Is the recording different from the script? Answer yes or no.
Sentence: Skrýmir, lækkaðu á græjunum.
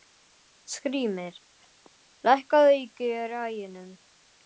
yes